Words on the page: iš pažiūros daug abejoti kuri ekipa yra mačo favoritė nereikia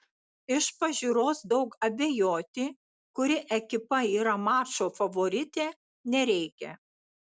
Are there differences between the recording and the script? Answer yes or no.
no